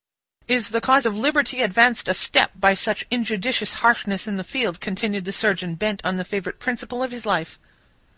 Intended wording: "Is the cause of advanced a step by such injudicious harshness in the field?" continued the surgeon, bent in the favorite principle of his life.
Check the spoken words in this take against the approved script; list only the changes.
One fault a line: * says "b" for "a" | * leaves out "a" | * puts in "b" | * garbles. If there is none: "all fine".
* puts in "liberty"
* says "on" for "in"